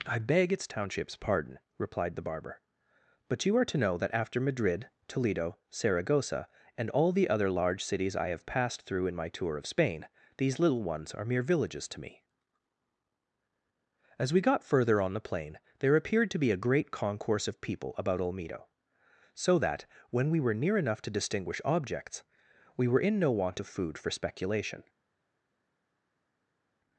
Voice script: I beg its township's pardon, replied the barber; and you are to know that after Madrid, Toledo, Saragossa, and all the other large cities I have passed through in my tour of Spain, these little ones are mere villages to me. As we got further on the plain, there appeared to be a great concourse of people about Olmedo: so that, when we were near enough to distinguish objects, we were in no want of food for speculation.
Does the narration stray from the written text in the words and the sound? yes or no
yes